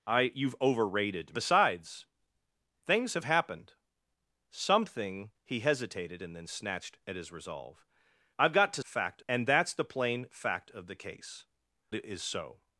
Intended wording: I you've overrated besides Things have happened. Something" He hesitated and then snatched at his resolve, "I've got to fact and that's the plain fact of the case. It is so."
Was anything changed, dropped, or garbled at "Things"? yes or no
no